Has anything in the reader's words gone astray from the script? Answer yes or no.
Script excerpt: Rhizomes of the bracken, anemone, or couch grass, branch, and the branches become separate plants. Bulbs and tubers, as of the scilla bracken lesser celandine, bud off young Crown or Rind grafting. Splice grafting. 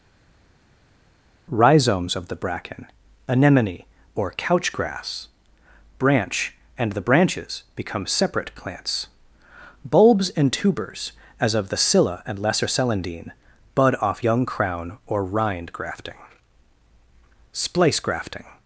yes